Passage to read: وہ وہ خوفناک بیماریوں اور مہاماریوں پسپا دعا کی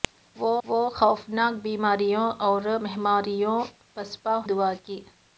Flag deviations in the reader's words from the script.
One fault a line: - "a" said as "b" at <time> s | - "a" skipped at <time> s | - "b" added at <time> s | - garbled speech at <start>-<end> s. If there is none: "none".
none